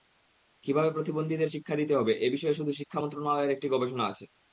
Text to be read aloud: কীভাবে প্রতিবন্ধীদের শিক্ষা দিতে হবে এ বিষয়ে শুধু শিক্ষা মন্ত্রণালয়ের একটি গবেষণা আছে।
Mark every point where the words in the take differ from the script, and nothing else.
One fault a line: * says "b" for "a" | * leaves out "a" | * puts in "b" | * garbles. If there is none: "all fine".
all fine